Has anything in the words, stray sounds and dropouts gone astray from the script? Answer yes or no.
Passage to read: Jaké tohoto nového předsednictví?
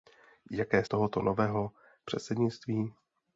no